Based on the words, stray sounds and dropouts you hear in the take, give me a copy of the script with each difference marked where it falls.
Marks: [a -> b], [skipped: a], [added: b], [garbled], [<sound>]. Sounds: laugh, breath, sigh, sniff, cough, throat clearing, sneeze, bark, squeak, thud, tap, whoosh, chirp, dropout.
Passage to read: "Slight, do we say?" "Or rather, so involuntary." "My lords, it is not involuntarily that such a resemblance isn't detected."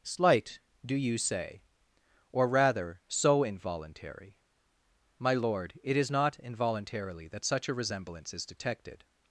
"Slight, do [we -> you] say?" "Or rather, so involuntary." "My [lords, -> lord] it is not involuntarily that such a resemblance [isn't -> is] detected."